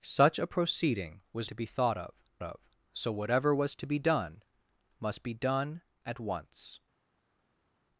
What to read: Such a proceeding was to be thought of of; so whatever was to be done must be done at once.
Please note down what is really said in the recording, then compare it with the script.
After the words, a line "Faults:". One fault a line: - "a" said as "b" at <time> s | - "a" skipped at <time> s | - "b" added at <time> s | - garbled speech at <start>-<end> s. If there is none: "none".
Such a proceeding was to be thought of of; so whatever was to be done must be done at once.
Faults:
none